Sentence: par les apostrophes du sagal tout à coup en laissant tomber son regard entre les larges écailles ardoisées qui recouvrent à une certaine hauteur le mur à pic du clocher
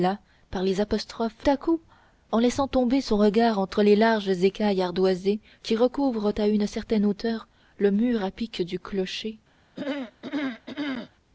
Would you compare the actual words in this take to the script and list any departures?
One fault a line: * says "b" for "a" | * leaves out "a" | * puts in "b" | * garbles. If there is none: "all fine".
* leaves out "du sagal tout"